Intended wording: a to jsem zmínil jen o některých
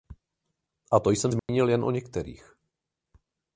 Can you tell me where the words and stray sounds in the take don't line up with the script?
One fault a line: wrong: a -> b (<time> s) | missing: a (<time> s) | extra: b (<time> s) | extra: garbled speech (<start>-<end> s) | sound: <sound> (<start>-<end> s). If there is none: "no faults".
sound: dropout (1.4-1.5 s)